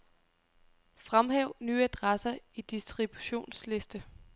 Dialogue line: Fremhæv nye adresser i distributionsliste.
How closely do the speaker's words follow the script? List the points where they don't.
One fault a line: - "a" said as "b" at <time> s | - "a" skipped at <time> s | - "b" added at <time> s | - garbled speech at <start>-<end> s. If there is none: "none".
none